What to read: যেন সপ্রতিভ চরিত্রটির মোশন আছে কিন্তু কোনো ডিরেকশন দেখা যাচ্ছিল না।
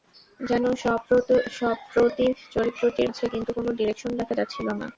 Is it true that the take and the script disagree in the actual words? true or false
true